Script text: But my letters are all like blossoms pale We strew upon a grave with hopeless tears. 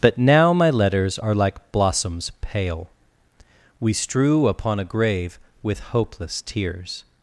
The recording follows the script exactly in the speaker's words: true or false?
false